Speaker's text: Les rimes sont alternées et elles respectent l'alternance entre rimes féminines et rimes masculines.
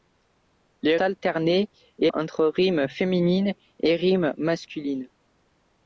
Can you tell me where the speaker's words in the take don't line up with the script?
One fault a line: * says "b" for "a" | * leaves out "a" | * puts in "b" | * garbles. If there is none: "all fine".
* leaves out "rimes sont"
* leaves out "elles respectent l'alternance"